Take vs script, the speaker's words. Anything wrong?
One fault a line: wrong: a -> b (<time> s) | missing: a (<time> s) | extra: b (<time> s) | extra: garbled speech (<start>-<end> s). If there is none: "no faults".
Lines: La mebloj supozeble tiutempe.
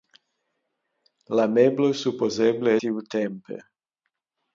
no faults